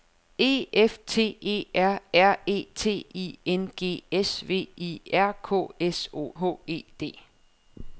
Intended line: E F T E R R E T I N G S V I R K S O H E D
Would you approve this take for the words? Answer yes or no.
yes